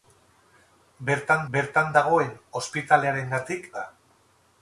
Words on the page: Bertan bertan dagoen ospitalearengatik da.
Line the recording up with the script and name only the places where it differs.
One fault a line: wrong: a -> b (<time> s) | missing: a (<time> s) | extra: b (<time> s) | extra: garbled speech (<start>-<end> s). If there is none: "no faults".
no faults